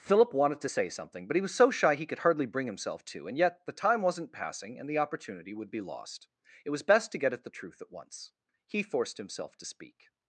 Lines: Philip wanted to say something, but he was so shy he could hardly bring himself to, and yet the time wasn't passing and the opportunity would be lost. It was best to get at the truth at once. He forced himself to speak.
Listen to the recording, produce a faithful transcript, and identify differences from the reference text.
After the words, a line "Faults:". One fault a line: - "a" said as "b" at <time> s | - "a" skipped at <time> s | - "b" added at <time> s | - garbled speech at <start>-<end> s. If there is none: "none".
Philip wanted to say something, but he was so shy he could hardly bring himself to, and yet the time wasn't passing and the opportunity would be lost. It was best to get at the truth at once. He forced himself to speak.
Faults:
none